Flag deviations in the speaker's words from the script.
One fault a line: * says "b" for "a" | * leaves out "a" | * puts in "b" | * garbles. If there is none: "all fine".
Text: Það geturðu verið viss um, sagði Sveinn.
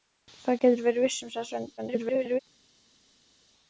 * garbles